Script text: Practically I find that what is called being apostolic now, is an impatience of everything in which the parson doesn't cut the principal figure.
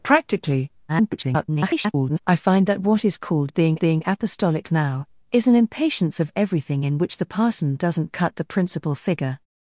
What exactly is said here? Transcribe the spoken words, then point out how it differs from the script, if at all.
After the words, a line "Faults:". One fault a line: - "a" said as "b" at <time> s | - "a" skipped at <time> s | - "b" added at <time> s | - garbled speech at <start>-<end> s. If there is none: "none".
Practically [garbled] I find that what is called being being apostolic now, is an impatience of everything in which the parson doesn't cut the principal figure.
Faults:
- garbled speech at 0.9-2.2 s
- "being" added at 3.8 s